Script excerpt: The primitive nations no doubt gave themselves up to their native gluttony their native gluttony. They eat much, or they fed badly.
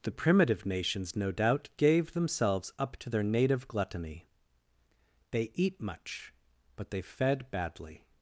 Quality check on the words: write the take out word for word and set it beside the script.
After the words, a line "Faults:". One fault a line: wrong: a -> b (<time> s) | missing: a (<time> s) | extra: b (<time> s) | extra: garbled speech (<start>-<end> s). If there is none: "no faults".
The primitive nations no doubt gave themselves up to their native gluttony. They eat much, but they fed badly.
Faults:
missing: their native gluttony (4.3 s)
wrong: or -> but (6.8 s)